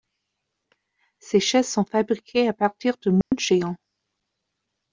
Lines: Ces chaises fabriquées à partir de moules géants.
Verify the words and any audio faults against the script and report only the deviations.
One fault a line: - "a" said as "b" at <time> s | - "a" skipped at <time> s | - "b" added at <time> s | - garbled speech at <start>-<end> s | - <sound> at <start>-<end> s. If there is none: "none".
- "sont" added at 1.7 s
- dropout at 3.2-3.3 s